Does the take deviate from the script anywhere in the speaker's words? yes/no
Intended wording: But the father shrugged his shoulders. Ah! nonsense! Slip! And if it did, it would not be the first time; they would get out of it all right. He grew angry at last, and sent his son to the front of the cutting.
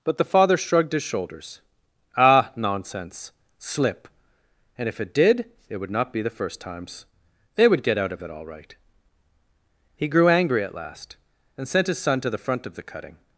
yes